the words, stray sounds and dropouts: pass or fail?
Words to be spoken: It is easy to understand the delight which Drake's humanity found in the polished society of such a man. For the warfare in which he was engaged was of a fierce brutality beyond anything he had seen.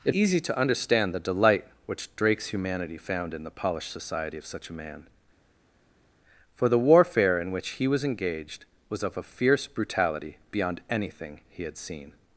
fail